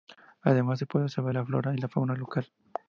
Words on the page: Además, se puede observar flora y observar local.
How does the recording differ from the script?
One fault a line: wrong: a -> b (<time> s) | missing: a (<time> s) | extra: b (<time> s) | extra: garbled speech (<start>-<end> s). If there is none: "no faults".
extra: la (1.3 s)
wrong: observar -> fauna (1.9 s)